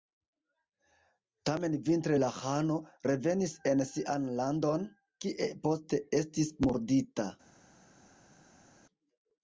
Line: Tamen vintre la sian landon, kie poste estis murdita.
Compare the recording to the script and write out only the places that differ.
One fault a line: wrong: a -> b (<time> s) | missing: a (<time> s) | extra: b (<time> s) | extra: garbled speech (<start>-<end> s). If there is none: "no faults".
extra: ĥano revenis en (2.4 s)